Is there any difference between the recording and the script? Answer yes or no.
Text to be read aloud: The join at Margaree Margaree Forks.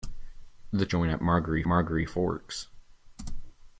no